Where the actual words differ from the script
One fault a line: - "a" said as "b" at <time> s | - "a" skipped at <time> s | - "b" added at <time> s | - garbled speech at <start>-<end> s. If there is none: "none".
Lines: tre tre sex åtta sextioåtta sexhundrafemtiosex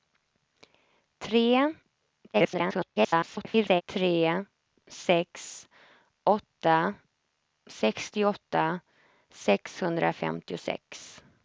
- garbled speech at 2.3-3.8 s